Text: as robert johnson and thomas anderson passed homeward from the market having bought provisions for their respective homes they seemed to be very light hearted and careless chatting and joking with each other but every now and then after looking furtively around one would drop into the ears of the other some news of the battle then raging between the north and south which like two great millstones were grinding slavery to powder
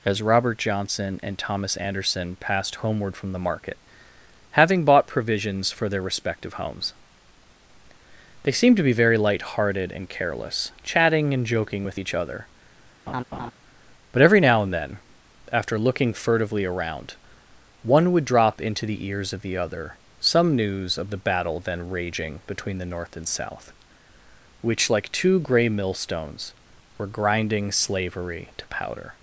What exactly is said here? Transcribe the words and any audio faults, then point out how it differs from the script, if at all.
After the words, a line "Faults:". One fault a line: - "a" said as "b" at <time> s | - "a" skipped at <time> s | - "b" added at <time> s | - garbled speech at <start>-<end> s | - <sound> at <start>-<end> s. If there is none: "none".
as robert johnson and thomas anderson passed homeward from the market having bought provisions for their respective homes they seemed to be very light hearted and careless chatting and joking with each other but every now and then after looking furtively around one would drop into the ears of the other some news of the battle then raging between the north and south which like two grey millstones were grinding slavery to powder
Faults:
- laugh at 13.1-13.5 s
- "great" said as "grey" at 25.4 s